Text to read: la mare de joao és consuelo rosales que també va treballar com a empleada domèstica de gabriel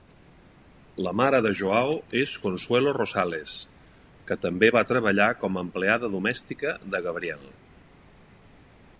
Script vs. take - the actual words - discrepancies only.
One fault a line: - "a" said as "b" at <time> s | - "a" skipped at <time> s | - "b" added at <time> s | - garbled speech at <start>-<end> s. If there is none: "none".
none